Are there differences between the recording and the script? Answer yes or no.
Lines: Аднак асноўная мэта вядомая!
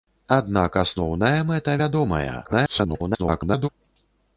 yes